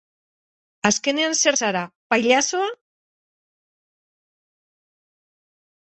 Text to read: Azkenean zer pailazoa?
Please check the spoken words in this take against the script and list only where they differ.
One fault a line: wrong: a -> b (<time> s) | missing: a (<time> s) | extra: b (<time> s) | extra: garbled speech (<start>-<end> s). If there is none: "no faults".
extra: zara (1.6 s)